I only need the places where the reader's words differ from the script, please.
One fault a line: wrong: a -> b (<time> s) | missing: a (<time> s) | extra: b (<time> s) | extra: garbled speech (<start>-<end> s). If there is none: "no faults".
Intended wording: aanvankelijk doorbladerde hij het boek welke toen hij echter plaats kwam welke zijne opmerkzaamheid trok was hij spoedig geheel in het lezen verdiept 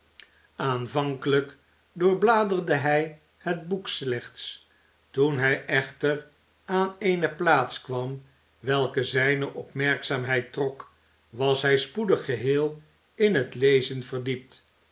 wrong: welke -> slechts (3.9 s)
extra: aan eene (6.7 s)